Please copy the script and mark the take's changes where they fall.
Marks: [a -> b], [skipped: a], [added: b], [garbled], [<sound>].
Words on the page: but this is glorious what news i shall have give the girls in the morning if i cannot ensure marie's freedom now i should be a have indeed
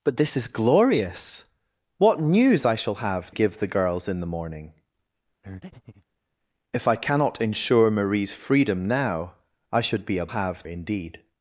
but this is glorious what news i shall have give the girls in the morning [breath] if i cannot ensure marie's freedom now i should be a have indeed